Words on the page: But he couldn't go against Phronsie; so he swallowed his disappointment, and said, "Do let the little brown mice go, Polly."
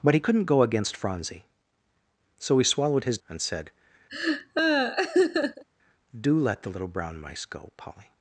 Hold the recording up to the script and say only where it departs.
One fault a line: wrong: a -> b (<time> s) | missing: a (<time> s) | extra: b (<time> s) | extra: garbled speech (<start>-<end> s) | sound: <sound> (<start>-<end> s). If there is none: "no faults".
missing: disappointment (3.2 s)
sound: laugh (4.1-5.6 s)